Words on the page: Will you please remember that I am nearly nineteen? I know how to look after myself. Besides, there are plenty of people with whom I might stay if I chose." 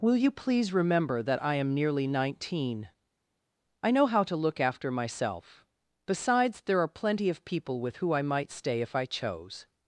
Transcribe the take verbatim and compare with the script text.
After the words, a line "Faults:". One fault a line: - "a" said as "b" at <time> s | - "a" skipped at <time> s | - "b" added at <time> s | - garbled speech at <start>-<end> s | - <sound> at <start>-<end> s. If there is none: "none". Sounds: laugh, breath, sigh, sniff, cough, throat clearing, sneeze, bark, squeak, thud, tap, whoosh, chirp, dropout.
Will you please remember that I am nearly nineteen? I know how to look after myself. Besides, there are plenty of people with who I might stay if I chose."
Faults:
- "whom" said as "who" at 8.0 s